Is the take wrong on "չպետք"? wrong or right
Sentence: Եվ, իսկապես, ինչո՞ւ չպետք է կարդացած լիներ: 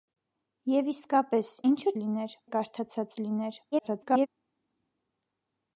wrong